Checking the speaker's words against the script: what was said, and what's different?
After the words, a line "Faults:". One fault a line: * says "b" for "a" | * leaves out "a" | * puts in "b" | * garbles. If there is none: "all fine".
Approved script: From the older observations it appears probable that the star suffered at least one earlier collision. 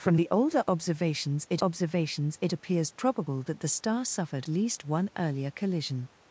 From the older observations it observations it appears probable that the star suffered least one earlier collision.
Faults:
* puts in "observations it"
* leaves out "at"